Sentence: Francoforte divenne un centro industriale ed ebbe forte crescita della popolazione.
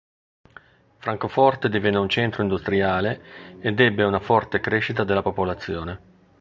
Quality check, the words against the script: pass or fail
fail